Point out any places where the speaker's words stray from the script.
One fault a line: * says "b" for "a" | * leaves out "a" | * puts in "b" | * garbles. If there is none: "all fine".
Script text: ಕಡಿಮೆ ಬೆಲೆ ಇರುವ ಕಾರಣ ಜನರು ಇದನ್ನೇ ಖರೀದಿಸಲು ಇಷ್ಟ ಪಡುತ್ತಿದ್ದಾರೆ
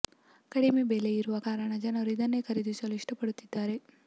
all fine